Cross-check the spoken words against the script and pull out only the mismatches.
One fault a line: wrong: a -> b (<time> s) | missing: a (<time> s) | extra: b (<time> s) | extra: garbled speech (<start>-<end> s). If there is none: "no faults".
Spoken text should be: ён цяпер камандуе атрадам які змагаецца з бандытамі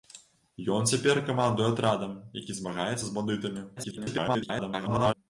extra: garbled speech (3.8-5.1 s)